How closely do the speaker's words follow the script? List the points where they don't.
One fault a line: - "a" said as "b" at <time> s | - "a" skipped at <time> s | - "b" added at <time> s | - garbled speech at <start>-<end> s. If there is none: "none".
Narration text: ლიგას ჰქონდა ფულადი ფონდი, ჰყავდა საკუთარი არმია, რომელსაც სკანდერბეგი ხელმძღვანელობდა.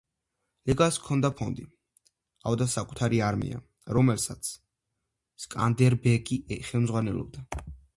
- "ფულადი" skipped at 1.3 s